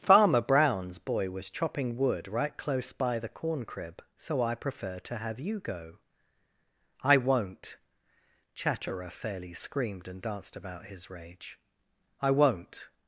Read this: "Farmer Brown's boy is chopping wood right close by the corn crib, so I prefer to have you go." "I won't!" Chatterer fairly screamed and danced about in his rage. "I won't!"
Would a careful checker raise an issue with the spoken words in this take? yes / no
yes